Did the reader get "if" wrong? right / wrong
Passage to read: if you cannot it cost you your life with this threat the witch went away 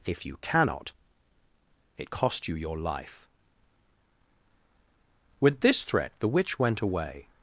right